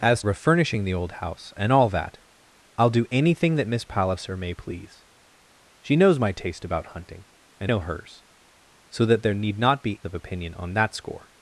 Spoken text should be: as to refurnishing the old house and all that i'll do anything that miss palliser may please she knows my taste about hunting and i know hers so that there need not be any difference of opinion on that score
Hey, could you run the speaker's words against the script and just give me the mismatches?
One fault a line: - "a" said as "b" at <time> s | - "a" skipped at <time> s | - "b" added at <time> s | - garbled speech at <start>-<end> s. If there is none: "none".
- "to" skipped at 0.2 s
- "i" skipped at 7.7 s
- "any difference" skipped at 10.0 s